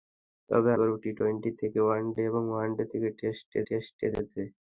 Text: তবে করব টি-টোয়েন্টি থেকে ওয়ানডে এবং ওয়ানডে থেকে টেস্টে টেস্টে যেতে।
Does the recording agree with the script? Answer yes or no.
yes